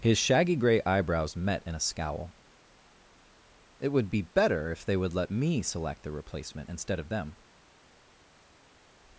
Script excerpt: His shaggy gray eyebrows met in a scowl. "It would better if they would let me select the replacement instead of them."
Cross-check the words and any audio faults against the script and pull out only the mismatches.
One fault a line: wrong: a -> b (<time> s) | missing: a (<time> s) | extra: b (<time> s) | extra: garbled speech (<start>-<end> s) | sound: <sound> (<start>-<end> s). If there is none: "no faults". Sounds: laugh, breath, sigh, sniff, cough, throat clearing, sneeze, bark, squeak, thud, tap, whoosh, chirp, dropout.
extra: be (4.1 s)